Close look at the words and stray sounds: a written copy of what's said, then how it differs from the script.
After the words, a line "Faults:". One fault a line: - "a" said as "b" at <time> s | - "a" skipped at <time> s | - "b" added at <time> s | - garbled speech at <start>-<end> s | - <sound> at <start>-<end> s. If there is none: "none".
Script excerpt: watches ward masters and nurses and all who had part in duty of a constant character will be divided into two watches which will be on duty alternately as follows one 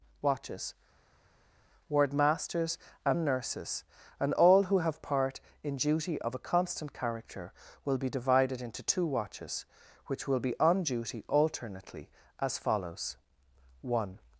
watches ward masters and nurses and all who have part in duty of a constant character will be divided into two watches which will be on duty alternately as follows one
Faults:
- "had" said as "have" at 4.8 s